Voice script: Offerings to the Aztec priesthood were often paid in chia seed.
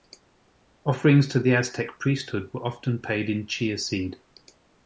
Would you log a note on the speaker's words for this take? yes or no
no